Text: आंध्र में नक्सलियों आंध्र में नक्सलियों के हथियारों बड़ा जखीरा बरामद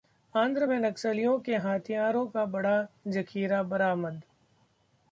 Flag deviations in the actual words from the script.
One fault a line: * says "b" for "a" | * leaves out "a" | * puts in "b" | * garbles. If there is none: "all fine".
* leaves out "आंध्र में नक्सलियों"
* puts in "का"